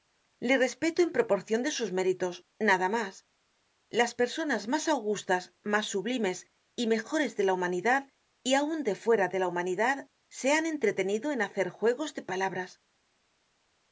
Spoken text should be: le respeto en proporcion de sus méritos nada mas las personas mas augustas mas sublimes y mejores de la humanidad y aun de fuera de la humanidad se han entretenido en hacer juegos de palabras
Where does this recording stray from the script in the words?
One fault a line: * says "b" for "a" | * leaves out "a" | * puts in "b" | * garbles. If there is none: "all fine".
all fine